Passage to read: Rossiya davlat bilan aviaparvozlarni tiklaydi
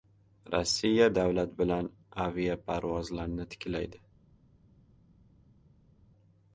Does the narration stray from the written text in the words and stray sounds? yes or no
no